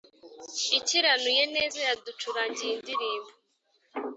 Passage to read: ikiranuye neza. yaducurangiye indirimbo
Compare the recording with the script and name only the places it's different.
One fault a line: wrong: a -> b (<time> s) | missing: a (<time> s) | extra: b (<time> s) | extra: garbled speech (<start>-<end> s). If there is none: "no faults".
no faults